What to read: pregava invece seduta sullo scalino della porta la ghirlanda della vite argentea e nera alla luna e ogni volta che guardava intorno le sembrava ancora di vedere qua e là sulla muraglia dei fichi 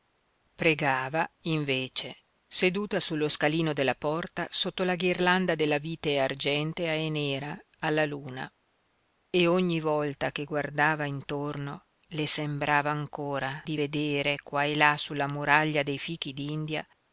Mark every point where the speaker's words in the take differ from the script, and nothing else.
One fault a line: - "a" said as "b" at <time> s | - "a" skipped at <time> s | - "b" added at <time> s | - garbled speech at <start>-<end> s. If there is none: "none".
- "sotto" added at 4.5 s